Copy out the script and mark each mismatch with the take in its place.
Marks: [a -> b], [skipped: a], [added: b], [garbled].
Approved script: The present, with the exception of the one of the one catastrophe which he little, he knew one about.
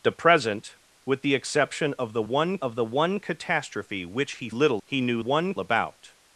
The present, with the exception of the one of the one catastrophe which he little, he knew one about.